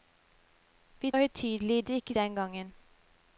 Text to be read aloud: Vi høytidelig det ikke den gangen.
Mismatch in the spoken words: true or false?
false